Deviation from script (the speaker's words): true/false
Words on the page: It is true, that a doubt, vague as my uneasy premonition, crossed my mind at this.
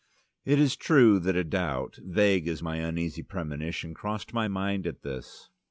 false